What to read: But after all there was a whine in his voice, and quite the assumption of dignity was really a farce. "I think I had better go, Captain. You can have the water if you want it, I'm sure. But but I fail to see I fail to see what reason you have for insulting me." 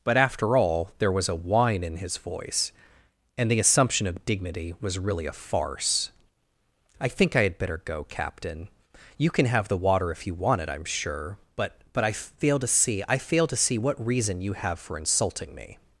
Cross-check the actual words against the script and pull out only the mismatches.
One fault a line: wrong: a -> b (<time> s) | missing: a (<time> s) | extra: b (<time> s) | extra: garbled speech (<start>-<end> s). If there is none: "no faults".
missing: quite (3.5 s)